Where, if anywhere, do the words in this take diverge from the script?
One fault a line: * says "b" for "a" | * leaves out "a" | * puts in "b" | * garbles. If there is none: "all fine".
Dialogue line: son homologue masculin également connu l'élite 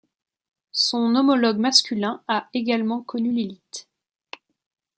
* puts in "a"